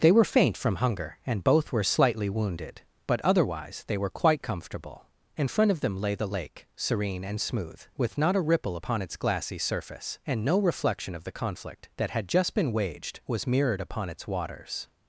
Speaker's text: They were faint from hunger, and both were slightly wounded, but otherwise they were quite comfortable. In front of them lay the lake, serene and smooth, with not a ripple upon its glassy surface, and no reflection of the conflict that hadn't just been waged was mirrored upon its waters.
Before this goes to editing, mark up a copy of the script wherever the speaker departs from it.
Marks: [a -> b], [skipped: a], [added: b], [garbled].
They were faint from hunger, and both were slightly wounded, but otherwise they were quite comfortable. In front of them lay the lake, serene and smooth, with not a ripple upon its glassy surface, and no reflection of the conflict that [hadn't -> had] just been waged was mirrored upon its waters.